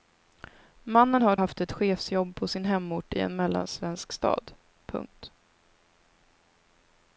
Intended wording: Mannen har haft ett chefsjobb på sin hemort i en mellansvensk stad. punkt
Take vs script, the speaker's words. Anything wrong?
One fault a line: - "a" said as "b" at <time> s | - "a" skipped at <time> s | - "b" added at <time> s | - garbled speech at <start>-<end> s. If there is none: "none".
none